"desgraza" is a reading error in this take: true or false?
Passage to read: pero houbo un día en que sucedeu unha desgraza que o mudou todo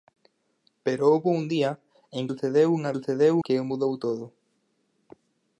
true